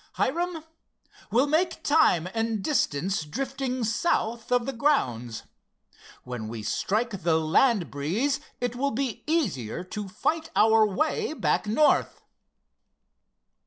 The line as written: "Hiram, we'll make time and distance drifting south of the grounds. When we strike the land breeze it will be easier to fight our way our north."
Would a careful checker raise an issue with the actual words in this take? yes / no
yes